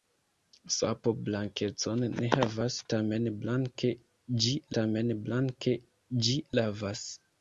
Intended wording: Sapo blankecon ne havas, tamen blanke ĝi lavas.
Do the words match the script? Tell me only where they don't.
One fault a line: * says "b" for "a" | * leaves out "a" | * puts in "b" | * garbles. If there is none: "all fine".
* puts in "tamen blanke ĝi"